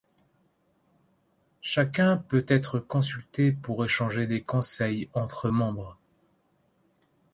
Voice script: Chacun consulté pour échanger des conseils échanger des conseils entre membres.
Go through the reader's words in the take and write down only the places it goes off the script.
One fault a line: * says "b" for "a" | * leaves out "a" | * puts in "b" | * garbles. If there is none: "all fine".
* puts in "peut être"
* leaves out "échanger des conseils"